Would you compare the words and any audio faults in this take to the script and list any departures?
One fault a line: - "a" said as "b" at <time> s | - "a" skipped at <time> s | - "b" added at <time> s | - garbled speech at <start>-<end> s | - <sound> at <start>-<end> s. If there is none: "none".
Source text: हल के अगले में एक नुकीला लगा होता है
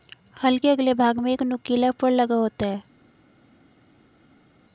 - "भाग" added at 0.9 s
- "फर" added at 2.0 s